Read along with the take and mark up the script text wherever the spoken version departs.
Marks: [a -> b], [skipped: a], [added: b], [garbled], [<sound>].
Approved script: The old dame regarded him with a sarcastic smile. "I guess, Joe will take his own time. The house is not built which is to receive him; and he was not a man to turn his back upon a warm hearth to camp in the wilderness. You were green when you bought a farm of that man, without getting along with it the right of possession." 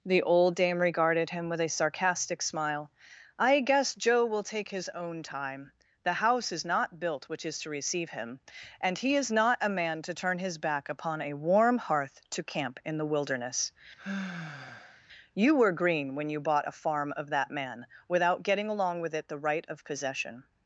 The old dame regarded him with a sarcastic smile. "I guess, Joe will take his own time. The house is not built which is to receive him; and he [was -> is] not a man to turn his back upon a warm hearth to camp in the wilderness. [sigh] You were green when you bought a farm of that man, without getting along with it the right of possession."